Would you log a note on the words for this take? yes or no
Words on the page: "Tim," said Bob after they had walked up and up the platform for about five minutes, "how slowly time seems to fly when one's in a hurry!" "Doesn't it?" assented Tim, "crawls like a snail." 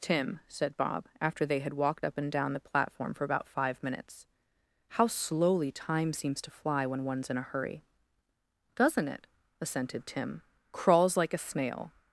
yes